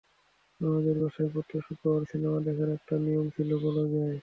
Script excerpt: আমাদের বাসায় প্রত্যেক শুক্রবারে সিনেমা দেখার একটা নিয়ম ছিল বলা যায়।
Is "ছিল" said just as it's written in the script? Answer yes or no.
yes